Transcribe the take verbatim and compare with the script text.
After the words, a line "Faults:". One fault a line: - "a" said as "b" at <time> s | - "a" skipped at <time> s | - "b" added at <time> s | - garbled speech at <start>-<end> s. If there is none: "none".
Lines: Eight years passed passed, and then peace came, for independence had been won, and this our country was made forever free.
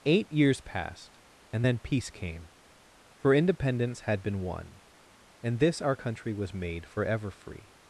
Eight years passed, and then peace came, for independence had been won, and this our country was made forever free.
Faults:
- "passed" skipped at 1.2 s